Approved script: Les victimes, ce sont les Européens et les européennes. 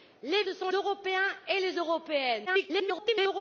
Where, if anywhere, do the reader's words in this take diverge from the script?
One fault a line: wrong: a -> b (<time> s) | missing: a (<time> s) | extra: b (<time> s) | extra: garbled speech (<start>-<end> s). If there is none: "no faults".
missing: victimes (0.4 s)
missing: les (0.7 s)
extra: garbled speech (2.5-3.4 s)